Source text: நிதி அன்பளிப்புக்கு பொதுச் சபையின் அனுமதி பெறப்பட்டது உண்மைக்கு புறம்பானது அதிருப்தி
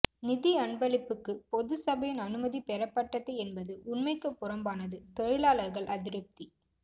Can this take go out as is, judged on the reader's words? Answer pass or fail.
fail